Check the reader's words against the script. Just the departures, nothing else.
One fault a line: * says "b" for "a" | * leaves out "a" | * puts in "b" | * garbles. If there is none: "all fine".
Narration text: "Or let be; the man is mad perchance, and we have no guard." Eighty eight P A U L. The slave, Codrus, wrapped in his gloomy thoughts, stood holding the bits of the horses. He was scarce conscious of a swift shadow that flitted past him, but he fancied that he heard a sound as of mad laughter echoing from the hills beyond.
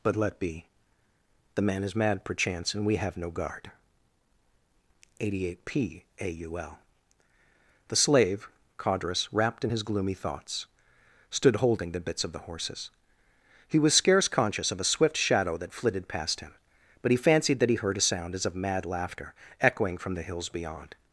* says "But" for "Or"